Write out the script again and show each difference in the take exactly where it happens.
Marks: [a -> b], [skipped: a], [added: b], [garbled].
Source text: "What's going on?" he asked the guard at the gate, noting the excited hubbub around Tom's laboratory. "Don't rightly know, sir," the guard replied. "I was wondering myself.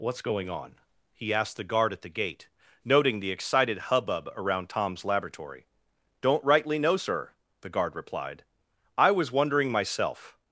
"What's going on?" he asked the guard at the gate, noting the excited hubbub around Tom's laboratory. "Don't rightly know, sir," the guard replied. "I was wondering myself.